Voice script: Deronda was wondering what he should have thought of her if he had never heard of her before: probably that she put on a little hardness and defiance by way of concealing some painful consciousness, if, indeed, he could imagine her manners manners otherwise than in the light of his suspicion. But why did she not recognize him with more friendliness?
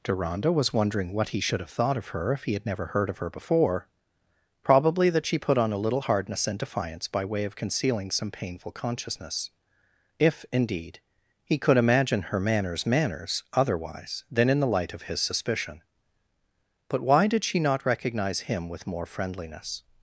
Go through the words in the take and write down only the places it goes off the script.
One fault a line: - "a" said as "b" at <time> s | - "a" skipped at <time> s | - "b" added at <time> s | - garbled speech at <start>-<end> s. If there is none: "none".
none